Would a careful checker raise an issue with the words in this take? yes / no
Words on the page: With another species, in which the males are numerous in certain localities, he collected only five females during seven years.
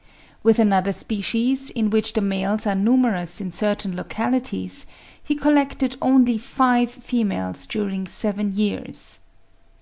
no